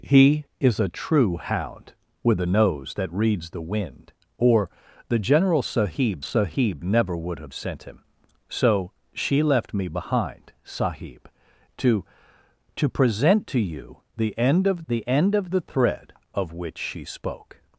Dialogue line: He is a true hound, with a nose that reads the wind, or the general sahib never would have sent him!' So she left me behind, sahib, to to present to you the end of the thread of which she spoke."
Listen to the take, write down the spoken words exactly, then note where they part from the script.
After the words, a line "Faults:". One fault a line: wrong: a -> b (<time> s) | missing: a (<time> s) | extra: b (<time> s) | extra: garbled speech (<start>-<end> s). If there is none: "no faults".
He is a true hound, with a nose that reads the wind, or the general sahib sahib never would have sent him!' So she left me behind, sahib, to to present to you the end of the end of the thread of which she spoke."
Faults:
extra: sahib (6.2 s)
extra: end of the (15.1 s)